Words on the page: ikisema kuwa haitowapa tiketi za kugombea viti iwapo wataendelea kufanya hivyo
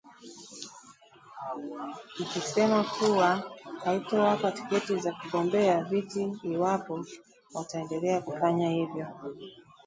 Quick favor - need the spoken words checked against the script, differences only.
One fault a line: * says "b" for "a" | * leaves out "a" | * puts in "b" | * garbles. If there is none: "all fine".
all fine